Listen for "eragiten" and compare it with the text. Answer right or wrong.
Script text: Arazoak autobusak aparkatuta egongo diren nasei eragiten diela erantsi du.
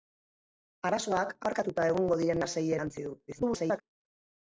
wrong